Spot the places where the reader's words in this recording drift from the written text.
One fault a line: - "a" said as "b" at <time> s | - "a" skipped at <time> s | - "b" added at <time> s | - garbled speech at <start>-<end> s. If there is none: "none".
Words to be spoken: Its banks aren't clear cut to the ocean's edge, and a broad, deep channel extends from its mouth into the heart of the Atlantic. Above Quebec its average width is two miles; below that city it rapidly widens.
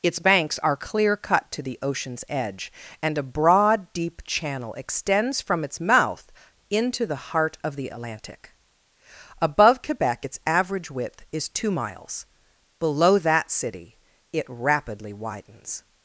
- "aren't" said as "are" at 0.6 s